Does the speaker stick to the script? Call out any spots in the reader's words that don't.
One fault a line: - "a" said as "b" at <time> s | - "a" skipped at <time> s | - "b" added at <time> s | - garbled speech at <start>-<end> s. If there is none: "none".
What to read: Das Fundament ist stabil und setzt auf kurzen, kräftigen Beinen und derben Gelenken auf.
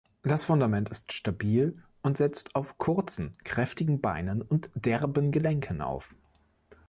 none